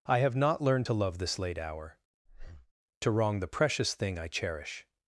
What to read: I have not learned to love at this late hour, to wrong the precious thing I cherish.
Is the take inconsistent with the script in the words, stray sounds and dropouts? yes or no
yes